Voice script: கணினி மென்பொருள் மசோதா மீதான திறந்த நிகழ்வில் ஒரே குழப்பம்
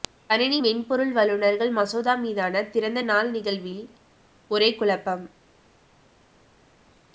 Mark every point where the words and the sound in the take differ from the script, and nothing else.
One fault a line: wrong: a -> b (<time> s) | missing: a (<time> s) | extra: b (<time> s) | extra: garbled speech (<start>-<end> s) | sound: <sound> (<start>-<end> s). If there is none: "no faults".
extra: வல்லுநர்கள் (1.1 s)
extra: நாள் (3.0 s)